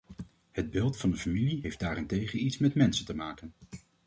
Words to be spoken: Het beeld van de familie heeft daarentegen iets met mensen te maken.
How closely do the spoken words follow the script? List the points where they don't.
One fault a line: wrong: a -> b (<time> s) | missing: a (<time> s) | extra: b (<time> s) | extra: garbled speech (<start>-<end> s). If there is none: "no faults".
no faults